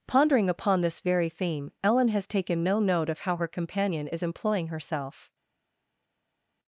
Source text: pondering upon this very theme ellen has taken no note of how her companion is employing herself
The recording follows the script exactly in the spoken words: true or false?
true